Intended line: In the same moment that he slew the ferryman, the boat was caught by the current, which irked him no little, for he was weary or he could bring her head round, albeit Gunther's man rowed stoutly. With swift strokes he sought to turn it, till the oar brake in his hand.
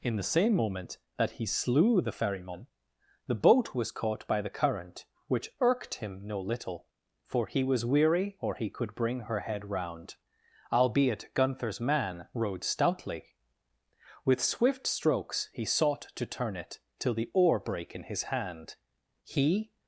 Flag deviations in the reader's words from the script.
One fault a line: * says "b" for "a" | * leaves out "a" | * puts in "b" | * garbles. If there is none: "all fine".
* puts in "He"